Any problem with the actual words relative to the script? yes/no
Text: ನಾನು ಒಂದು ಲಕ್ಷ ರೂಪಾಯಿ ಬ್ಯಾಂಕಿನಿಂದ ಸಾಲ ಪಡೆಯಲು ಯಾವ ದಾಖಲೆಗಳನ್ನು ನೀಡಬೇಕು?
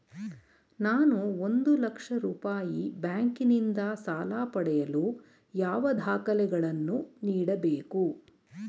no